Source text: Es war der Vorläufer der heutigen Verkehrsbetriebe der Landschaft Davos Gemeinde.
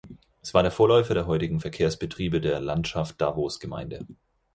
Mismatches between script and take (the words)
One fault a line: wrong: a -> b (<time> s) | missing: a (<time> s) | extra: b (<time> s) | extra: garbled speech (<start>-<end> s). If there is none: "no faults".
no faults